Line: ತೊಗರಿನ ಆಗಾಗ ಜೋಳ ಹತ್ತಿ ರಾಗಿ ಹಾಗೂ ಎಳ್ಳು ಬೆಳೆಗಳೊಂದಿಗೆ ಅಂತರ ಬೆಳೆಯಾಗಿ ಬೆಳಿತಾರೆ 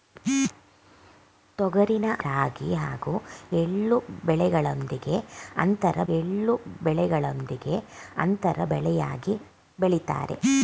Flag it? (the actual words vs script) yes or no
yes